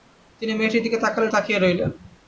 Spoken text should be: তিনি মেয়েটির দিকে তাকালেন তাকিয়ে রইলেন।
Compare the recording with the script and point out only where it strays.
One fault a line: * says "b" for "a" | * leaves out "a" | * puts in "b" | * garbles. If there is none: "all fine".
all fine